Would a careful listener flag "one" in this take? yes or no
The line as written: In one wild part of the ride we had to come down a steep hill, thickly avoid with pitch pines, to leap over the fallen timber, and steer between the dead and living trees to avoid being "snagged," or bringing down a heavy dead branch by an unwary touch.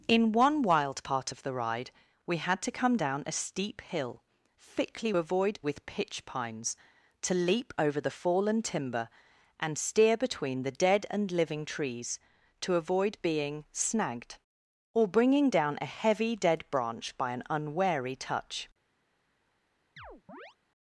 no